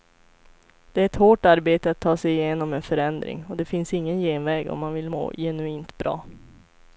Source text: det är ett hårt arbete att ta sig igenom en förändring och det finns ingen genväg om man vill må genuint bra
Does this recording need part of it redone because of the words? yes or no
no